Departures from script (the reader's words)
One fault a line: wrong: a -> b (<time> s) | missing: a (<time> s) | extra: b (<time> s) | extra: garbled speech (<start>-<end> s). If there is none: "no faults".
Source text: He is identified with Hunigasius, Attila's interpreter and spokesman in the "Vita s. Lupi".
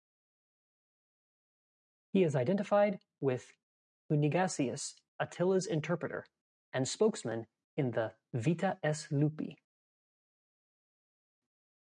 no faults